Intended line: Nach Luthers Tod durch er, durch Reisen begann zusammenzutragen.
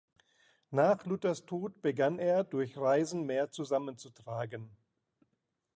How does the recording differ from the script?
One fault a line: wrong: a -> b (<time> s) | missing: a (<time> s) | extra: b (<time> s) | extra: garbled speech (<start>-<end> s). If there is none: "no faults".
wrong: durch -> begann (1.8 s)
wrong: begann -> mehr (3.3 s)